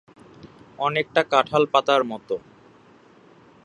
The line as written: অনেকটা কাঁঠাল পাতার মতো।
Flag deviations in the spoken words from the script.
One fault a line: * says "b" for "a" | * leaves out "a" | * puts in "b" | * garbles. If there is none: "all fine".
all fine